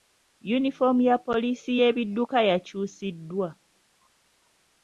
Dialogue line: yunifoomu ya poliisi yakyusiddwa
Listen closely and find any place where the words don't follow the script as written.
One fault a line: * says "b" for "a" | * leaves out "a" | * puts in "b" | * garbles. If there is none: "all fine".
* puts in "y'ebidduka"